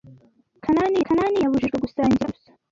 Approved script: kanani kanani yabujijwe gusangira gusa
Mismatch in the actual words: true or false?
false